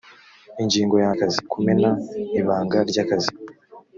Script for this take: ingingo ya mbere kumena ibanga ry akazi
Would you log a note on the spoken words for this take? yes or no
yes